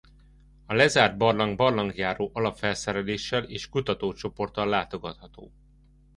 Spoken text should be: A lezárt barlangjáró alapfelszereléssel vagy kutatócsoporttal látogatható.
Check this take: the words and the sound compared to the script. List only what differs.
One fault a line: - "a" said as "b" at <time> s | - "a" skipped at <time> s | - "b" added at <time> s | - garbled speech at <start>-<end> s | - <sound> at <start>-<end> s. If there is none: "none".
- "barlang" added at 1.2 s
- "vagy" said as "és" at 3.4 s